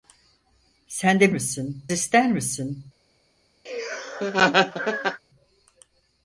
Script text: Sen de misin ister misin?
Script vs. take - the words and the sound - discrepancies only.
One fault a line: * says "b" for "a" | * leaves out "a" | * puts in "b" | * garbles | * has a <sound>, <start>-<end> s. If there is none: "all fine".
* has a laugh, 3.7-5.2 s